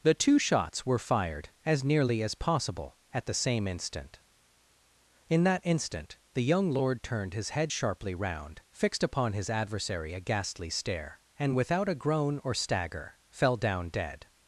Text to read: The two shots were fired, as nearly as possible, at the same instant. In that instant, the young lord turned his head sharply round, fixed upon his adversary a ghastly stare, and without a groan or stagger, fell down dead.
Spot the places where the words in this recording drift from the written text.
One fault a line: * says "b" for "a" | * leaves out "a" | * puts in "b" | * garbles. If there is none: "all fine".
all fine